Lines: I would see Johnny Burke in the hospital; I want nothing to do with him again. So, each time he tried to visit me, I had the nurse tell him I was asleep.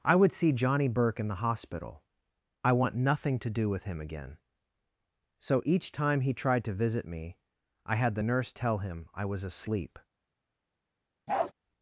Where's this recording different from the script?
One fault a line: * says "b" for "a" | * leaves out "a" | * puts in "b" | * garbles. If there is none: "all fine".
all fine